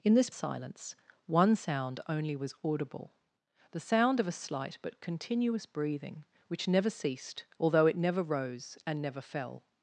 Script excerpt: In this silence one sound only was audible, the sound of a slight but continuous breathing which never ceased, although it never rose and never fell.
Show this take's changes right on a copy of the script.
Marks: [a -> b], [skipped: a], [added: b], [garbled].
In this silence one sound only was audible, the sound of a slight but continuous breathing which never ceased, although it never rose and never fell.